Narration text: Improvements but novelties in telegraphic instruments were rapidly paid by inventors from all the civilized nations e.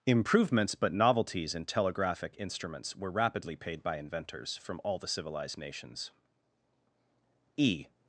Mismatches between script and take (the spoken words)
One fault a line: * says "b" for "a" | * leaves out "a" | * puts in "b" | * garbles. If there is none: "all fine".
all fine